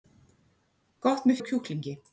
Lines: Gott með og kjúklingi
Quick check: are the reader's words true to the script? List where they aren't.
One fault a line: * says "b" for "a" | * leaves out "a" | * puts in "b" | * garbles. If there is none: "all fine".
all fine